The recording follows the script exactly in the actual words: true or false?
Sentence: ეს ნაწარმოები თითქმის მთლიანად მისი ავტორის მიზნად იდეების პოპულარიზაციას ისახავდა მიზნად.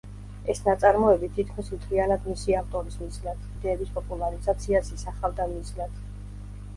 true